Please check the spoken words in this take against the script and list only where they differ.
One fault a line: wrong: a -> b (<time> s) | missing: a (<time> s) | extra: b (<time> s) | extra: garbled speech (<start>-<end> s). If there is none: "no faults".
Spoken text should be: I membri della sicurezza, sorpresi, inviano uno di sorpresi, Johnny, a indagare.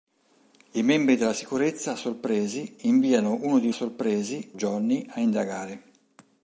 no faults